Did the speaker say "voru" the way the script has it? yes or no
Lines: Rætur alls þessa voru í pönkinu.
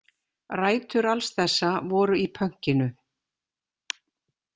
yes